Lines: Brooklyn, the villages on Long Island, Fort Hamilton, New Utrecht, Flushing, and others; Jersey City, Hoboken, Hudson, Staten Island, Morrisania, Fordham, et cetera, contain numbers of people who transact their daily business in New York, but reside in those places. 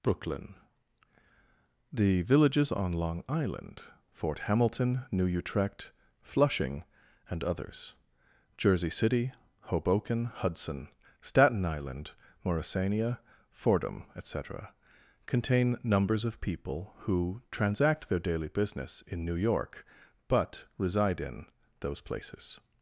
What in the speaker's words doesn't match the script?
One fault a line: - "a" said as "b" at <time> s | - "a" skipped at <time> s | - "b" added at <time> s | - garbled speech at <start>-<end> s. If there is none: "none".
none